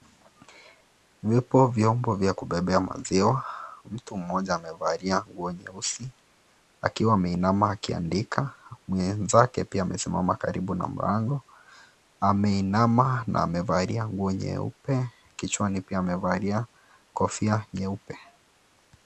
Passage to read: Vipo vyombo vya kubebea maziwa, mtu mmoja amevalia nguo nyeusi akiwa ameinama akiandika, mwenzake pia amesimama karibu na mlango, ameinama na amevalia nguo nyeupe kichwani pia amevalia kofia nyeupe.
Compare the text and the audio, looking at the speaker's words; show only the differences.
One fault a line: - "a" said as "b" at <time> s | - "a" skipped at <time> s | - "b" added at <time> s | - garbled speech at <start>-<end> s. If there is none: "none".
none